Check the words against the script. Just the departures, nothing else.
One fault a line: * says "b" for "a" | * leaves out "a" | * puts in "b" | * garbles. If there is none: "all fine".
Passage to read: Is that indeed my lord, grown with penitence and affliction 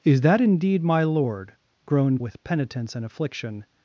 all fine